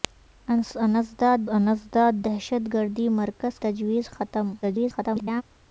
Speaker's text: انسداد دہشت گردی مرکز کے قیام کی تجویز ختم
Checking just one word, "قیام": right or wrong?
wrong